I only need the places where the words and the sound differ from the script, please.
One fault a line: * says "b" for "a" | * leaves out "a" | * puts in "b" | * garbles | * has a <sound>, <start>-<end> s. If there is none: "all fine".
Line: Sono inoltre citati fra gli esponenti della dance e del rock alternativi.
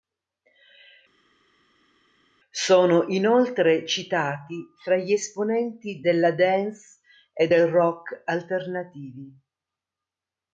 all fine